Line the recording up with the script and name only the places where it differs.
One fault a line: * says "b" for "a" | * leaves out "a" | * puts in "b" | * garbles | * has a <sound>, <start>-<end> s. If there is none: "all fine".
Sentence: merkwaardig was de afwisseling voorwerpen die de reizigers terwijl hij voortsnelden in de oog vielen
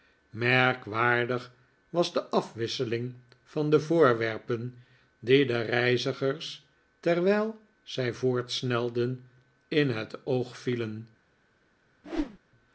* puts in "van de"
* says "zij" for "hij"
* says "het" for "de"
* has a whoosh, 12.0-12.4 s